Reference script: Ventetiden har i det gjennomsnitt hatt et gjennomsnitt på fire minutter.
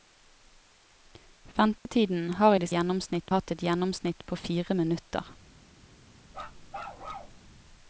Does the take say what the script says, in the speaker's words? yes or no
yes